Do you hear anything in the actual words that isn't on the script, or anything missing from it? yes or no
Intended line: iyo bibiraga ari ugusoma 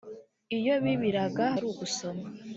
no